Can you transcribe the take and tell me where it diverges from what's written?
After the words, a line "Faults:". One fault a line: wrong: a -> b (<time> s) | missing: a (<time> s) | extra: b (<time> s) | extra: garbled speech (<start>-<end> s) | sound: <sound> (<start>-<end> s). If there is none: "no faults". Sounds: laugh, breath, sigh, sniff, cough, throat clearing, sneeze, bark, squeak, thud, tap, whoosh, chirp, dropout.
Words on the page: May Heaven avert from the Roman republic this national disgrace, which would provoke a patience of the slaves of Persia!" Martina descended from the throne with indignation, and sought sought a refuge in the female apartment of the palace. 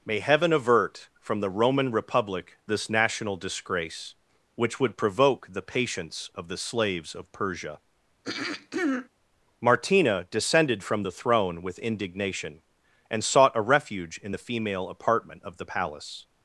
May Heaven avert from the Roman republic this national disgrace, which would provoke the patience of the slaves of Persia!" Martina descended from the throne with indignation, and sought a refuge in the female apartment of the palace.
Faults:
wrong: a -> the (5.5 s)
sound: throat clearing (8.2-9.1 s)
missing: sought (13.5 s)